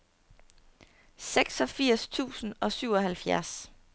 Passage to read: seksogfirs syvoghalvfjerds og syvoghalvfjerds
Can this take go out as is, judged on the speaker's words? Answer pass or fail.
fail